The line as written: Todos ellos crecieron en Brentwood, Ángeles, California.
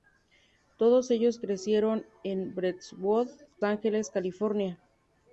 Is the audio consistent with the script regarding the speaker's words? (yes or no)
yes